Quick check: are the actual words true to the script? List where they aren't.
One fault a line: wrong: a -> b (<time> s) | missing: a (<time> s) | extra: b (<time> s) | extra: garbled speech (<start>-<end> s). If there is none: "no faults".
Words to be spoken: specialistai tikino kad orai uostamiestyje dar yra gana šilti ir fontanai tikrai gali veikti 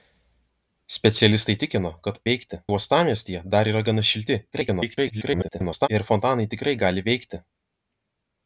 wrong: orai -> veikti (2.3 s)
extra: garbled speech (4.5-5.9 s)